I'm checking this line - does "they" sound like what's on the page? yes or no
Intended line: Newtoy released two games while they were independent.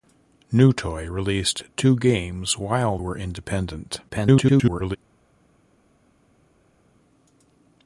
no